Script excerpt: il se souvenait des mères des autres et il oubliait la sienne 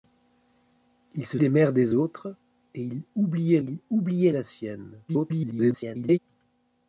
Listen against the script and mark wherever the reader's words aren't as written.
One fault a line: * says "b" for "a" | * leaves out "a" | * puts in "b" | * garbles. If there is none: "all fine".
* leaves out "souvenait"
* puts in "il oubliait"
* garbles